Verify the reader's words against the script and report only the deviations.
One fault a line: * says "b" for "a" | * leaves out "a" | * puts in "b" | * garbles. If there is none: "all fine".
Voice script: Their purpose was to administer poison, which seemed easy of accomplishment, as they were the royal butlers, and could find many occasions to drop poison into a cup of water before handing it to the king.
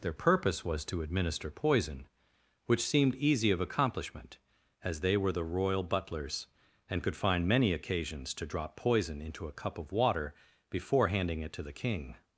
all fine